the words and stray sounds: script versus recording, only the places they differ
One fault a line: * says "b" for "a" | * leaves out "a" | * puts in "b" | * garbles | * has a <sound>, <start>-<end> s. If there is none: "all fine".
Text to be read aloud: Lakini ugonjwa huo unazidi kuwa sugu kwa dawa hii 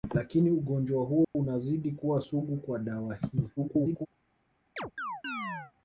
* has a dropout, 1.2-1.4 s
* garbles
* has a chirp, 4.8-5.7 s